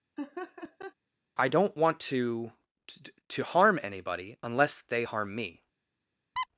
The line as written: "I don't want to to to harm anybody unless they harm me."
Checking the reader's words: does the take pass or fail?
pass